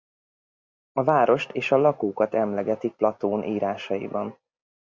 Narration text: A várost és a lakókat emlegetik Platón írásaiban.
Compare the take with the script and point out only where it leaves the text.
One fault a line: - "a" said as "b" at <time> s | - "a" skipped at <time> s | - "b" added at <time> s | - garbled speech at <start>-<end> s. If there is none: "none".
none